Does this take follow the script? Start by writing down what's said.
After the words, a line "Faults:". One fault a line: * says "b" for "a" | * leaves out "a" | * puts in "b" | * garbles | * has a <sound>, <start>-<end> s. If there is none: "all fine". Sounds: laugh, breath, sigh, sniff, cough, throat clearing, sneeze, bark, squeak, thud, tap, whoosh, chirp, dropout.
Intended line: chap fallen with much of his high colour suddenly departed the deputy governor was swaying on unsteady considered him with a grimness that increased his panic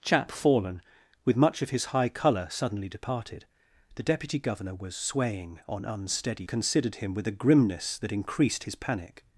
chap fallen with much of his high colour suddenly departed the deputy governor was swaying on unsteady considered him with a grimness that increased his panic
Faults:
all fine